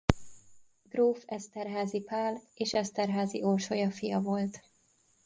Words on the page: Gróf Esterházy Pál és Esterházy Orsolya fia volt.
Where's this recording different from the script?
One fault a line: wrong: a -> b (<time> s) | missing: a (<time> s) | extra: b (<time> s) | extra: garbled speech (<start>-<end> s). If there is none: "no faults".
no faults